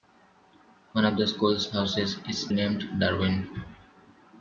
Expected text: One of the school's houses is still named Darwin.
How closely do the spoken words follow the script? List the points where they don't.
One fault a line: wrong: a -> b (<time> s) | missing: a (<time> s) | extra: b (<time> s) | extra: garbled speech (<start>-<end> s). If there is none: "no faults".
missing: still (2.5 s)